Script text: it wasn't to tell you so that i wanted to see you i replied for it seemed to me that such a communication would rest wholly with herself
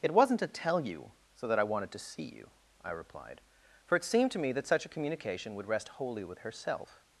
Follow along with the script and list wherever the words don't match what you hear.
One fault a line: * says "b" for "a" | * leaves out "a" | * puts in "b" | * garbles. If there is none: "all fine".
all fine